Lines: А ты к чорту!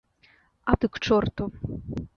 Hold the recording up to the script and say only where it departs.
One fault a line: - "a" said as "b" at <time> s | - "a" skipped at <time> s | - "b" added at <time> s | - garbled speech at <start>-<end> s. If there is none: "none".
none